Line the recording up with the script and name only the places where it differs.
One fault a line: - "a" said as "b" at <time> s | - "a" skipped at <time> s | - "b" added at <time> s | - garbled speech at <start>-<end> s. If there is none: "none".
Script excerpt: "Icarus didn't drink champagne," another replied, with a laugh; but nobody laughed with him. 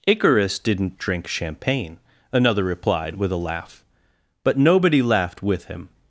none